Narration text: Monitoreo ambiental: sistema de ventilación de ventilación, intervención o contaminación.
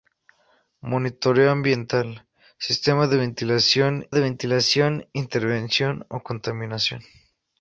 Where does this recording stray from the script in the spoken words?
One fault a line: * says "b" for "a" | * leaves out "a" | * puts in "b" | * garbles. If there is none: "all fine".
all fine